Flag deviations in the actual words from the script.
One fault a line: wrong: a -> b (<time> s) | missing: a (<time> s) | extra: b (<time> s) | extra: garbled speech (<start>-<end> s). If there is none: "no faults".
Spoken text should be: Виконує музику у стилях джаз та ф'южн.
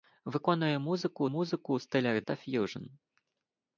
extra: музику (1.3 s)
missing: джаз (2.2 s)